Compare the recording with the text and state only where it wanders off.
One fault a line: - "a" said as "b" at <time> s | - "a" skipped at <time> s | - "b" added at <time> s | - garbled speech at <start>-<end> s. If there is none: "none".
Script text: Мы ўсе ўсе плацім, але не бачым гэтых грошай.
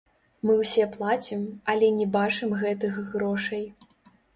- "ўсе" skipped at 0.9 s